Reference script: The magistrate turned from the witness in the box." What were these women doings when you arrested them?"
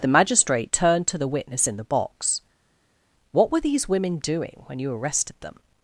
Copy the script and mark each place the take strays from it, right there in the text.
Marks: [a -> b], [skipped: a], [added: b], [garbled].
The magistrate turned [from -> to] the witness in the box." What were these women [doings -> doing] when you arrested them?"